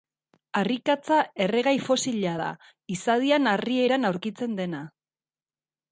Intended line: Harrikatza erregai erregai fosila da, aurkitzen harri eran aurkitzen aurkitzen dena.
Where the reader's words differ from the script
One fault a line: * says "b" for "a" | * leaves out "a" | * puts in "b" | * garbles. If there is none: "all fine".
* leaves out "erregai"
* says "izadian" for "aurkitzen"
* leaves out "aurkitzen"